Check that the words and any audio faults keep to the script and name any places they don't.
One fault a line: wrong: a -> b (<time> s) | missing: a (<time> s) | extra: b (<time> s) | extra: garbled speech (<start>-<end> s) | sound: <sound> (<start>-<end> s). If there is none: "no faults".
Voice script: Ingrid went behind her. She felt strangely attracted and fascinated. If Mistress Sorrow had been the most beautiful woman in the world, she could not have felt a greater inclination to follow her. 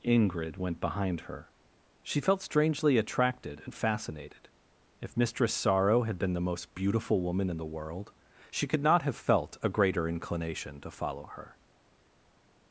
no faults